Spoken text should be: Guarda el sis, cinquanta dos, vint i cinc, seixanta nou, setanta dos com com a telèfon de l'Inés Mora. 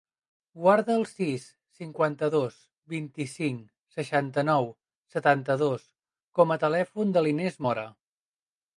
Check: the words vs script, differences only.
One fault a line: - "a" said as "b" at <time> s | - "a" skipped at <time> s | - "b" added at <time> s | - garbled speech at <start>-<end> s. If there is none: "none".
- "com" skipped at 6.6 s